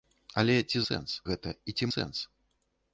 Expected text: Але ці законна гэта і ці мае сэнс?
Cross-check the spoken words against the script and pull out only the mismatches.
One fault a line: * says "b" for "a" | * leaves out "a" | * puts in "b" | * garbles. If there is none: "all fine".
* says "сэнс" for "законна"
* leaves out "мае"